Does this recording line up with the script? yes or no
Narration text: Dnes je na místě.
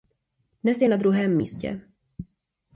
no